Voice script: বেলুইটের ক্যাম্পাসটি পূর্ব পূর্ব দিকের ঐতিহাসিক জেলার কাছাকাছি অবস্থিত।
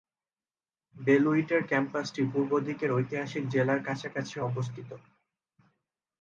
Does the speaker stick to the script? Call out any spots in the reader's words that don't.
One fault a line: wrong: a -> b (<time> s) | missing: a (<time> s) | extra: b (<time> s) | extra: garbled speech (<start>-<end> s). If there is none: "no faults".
missing: পূর্ব (2.5 s)